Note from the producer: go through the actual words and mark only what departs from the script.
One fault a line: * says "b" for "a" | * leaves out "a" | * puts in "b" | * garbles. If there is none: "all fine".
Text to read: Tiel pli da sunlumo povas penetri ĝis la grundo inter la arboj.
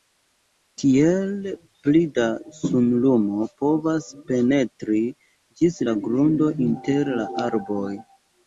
all fine